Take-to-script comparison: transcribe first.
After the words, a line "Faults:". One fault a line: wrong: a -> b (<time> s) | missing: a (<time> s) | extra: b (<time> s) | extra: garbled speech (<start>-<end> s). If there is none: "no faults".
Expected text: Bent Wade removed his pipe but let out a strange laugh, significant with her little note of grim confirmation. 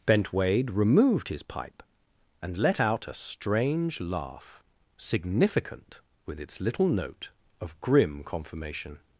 Bent Wade removed his pipe and let out a strange laugh, significant with its little note of grim confirmation.
Faults:
wrong: but -> and (2.4 s)
wrong: her -> its (6.4 s)